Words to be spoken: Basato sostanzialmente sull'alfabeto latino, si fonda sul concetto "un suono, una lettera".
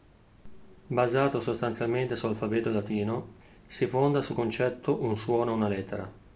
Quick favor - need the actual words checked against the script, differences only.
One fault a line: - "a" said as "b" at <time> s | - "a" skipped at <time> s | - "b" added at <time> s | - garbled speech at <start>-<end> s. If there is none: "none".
none